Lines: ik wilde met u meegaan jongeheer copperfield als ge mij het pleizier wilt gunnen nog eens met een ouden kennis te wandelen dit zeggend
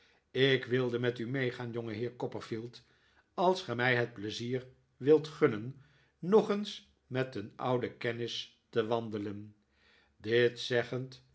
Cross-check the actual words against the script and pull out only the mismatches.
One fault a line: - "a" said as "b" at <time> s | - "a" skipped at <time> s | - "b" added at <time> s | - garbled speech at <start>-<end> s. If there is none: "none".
none